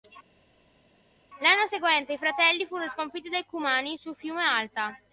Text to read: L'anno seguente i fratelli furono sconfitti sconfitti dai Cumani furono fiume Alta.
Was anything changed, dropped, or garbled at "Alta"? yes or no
no